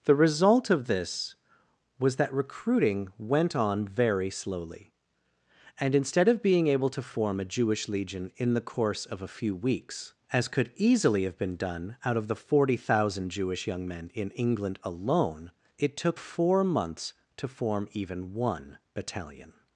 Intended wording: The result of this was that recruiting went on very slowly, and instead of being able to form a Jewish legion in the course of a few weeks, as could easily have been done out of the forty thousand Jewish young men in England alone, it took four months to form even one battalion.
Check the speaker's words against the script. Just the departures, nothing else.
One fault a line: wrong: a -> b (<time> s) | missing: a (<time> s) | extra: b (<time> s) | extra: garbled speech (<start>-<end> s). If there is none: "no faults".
no faults